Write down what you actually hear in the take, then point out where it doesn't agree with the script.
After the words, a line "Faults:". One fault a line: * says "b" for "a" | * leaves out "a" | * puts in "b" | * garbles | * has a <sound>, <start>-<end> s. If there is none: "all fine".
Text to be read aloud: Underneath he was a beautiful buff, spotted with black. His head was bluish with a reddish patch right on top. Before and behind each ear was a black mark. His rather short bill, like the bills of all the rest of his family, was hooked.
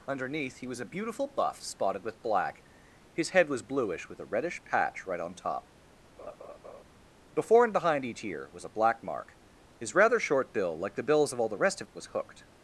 Underneath he was a beautiful buff, spotted with black. His head was bluish with a reddish patch right on top. Before and behind each ear was a black mark. His rather short bill, like the bills of all the rest of was hooked.
Faults:
* has a laugh, 6.2-6.8 s
* leaves out "his family"